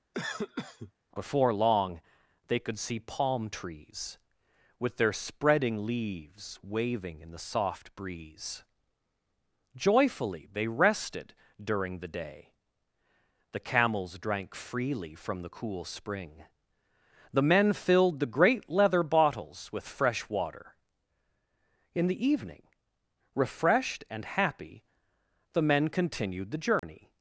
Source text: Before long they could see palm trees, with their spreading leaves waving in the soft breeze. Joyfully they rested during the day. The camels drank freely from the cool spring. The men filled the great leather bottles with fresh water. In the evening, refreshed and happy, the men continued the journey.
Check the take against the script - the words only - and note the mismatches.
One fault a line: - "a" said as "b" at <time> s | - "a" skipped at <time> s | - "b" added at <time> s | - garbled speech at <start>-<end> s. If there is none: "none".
none